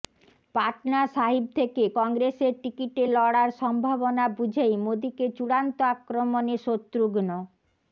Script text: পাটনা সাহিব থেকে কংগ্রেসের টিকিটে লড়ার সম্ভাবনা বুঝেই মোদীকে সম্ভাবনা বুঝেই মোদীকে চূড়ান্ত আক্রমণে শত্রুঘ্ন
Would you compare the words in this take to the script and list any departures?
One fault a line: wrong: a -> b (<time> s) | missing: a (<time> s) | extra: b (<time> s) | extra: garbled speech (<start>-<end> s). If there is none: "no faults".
missing: সম্ভাবনা বুঝেই মোদীকে (5.3 s)